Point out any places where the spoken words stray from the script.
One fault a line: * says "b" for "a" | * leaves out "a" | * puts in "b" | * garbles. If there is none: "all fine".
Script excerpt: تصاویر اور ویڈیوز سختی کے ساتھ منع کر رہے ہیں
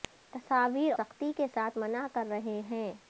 * leaves out "اور ویڈیوز"